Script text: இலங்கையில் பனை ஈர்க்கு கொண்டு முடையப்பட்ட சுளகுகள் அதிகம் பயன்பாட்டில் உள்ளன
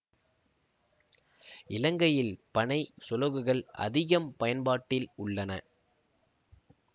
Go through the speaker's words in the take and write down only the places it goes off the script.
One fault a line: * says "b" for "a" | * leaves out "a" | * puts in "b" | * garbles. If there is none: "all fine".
* leaves out "ஈர்க்கு கொண்டு முடையப்பட்ட"